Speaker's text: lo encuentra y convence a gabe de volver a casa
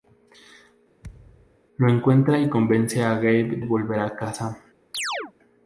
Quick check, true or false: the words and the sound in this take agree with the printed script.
false